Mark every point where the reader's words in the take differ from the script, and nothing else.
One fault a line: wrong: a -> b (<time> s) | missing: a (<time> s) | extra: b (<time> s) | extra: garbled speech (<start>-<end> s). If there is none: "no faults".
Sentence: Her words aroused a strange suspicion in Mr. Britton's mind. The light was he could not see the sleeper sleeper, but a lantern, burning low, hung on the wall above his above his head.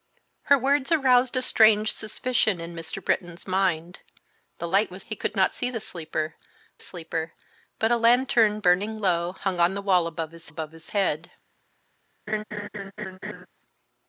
no faults